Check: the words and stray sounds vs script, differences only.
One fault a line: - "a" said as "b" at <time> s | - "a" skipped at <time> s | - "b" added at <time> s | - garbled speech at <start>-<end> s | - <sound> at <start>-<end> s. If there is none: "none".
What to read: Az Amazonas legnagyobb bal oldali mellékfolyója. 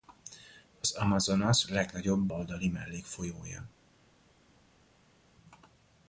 - "bal" skipped at 2.3 s